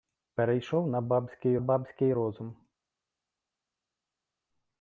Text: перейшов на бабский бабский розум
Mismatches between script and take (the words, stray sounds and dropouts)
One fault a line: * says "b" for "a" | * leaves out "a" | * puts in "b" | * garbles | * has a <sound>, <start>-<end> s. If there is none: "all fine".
all fine